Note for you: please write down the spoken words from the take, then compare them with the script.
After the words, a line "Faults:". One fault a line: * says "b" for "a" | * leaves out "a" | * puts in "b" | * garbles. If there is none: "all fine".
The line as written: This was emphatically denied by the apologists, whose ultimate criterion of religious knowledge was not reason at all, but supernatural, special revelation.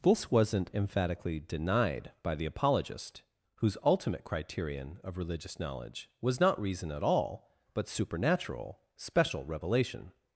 This wasn't emphatically denied by the apologist, whose ultimate criterion of religious knowledge was not reason at all, but supernatural, special revelation.
Faults:
* says "wasn't" for "was"
* says "apologist" for "apologists"